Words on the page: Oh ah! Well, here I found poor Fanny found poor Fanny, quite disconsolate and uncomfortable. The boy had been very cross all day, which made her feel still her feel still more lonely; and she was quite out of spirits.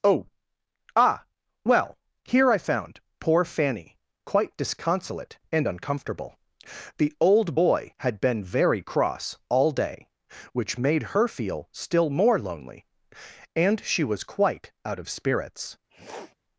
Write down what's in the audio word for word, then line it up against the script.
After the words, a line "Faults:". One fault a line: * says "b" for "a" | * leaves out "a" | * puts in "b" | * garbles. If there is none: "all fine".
Oh ah! Well, here I found poor Fanny, quite disconsolate and uncomfortable. The old boy had been very cross all day, which made her feel still more lonely; and she was quite out of spirits.
Faults:
* leaves out "found poor Fanny"
* puts in "old"
* leaves out "her feel still"